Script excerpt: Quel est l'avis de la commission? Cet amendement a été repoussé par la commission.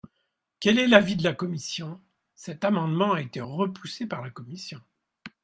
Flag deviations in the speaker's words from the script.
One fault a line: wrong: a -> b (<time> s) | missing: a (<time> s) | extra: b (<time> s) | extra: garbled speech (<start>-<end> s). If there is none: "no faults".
no faults